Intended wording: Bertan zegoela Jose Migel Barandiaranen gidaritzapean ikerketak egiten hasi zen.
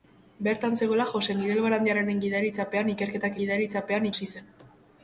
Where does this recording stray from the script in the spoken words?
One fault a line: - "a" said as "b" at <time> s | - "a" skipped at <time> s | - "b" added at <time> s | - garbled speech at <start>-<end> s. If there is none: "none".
- "egiten" said as "gidaritzapean" at 3.4 s